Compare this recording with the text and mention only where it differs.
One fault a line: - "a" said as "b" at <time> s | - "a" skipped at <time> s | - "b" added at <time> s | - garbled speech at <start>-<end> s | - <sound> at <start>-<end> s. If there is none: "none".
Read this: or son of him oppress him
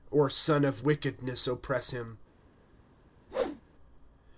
- "him" said as "wickedness" at 0.8 s
- whoosh at 3.3-3.6 s